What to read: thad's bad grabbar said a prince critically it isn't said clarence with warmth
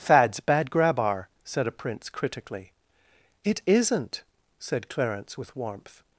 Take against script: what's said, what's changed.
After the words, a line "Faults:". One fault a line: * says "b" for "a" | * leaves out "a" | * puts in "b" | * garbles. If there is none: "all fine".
thad's bad grabbar said a prince critically it isn't said clarence with warmth
Faults:
all fine